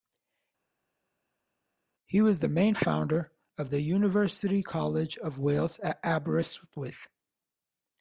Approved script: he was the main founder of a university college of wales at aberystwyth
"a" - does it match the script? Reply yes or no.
no